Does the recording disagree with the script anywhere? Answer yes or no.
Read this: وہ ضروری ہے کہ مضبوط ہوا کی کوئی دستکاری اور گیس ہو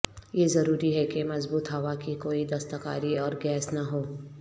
yes